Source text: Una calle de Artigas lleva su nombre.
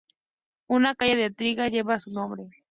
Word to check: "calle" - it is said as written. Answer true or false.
true